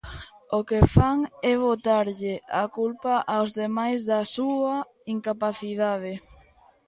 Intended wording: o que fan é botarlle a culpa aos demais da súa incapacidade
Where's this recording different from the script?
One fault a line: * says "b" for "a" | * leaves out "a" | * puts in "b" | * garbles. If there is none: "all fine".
all fine